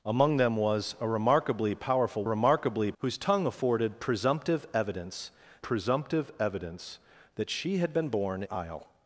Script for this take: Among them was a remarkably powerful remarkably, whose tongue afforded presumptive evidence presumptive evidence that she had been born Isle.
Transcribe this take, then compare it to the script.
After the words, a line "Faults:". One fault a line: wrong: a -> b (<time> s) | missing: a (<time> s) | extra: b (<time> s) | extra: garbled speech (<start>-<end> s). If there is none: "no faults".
Among them was a remarkably powerful remarkably, whose tongue afforded presumptive evidence presumptive evidence that she had been born Isle.
Faults:
no faults